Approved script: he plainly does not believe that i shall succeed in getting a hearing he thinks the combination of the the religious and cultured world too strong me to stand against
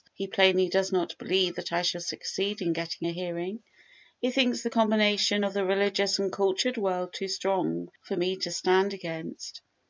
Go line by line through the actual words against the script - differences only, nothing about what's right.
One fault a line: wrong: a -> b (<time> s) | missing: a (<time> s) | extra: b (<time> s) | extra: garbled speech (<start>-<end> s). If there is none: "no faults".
missing: the (5.6 s)
extra: for (8.0 s)